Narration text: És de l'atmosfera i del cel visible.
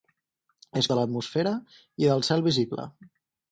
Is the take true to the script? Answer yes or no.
yes